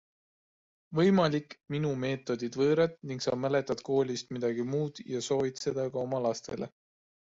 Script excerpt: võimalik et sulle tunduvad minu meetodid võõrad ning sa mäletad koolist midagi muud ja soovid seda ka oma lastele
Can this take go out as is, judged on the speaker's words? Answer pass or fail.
fail